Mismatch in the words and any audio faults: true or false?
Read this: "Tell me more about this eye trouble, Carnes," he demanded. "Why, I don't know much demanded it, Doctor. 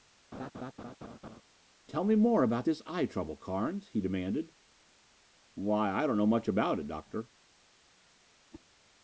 true